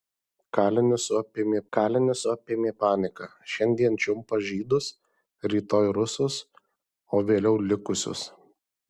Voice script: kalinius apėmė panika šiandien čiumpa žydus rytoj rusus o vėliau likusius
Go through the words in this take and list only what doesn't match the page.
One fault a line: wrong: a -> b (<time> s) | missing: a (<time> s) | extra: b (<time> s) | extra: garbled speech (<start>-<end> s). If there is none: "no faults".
extra: kalinius apėmė (1.8 s)